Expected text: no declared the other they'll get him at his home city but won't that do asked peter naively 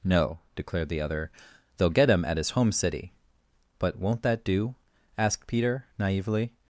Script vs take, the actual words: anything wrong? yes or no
no